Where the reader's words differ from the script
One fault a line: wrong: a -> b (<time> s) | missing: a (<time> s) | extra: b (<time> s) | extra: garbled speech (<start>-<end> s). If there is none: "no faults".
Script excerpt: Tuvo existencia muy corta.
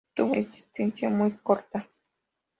no faults